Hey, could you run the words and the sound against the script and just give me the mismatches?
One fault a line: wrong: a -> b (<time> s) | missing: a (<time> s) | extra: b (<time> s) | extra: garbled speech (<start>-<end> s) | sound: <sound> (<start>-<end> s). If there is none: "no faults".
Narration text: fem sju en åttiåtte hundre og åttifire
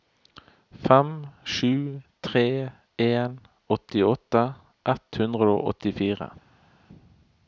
extra: tre (2.3 s)
extra: ett (4.9 s)